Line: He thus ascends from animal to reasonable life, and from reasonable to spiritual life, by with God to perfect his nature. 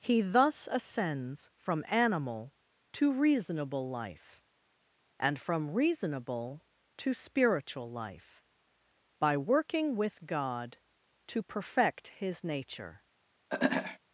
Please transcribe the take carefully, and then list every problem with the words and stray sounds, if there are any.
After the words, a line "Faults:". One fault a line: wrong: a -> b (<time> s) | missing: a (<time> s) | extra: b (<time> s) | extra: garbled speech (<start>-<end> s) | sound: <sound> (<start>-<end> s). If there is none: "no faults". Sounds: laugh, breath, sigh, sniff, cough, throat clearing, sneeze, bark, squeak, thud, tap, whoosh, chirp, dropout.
He thus ascends from animal to reasonable life, and from reasonable to spiritual life, by working with God to perfect his nature.
Faults:
extra: working (9.4 s)
sound: throat clearing (13.5-14.0 s)